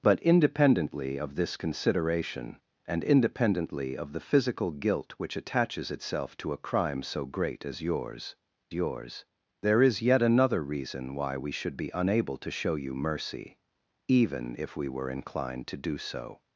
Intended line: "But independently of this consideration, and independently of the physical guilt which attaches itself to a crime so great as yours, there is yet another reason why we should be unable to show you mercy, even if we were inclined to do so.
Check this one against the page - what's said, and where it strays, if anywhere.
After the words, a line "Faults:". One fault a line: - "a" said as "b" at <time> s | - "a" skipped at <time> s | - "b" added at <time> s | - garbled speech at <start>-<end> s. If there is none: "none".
"But independently of this consideration, and independently of the physical guilt which attaches itself to a crime so great as yours yours, there is yet another reason why we should be unable to show you mercy, even if we were inclined to do so.
Faults:
- "yours" added at 8.7 s